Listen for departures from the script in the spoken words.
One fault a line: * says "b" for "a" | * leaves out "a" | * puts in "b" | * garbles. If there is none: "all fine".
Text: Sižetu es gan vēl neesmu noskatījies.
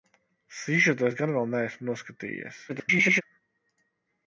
* garbles